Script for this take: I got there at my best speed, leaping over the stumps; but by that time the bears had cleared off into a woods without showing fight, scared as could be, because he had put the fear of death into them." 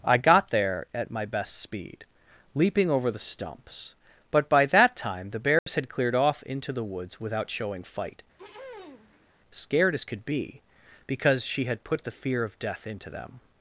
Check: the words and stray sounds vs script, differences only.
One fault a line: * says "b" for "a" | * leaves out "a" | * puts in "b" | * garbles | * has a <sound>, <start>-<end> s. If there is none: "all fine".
* has a dropout, 5.6-5.7 s
* says "the" for "a"
* has a throat clearing, 8.3-9.3 s
* says "she" for "he"